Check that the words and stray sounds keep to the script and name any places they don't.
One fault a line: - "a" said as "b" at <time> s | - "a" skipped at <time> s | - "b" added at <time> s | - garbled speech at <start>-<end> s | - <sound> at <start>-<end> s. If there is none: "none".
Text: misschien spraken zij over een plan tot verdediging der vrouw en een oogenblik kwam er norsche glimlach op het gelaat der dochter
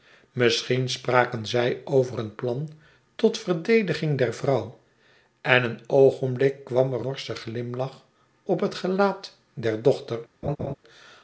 - laugh at 10.4-10.8 s